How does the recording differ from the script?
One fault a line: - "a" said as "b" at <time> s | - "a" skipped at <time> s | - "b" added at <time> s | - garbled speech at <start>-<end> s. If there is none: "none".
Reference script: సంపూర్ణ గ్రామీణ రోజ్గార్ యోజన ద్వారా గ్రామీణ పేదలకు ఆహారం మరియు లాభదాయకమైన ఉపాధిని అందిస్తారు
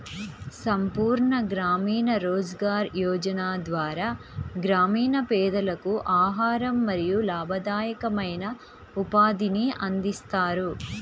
none